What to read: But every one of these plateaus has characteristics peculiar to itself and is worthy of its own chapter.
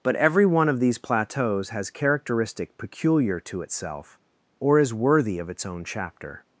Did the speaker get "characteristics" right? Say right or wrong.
wrong